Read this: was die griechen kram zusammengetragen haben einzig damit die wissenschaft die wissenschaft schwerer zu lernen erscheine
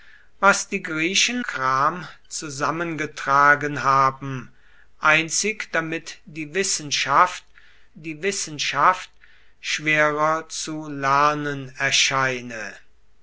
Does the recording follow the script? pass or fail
pass